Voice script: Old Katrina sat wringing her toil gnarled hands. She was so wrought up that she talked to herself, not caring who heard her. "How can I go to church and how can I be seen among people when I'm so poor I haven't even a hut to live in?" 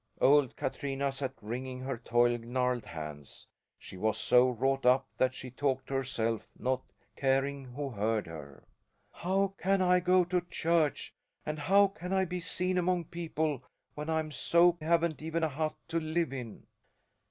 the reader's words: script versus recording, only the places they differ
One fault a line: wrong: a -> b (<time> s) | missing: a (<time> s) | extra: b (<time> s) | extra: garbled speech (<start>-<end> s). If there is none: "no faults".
missing: poor I (14.8 s)